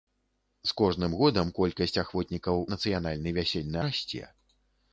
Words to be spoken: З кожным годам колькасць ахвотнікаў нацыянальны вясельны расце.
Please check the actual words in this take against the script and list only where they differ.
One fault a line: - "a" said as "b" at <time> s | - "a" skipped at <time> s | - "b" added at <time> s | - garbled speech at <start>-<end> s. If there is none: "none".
none